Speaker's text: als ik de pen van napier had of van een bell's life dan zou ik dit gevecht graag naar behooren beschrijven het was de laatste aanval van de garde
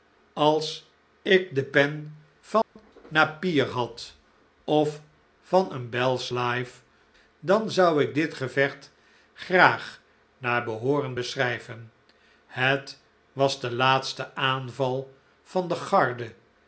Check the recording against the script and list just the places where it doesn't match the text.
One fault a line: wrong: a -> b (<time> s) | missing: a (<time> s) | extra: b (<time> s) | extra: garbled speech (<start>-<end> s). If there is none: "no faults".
no faults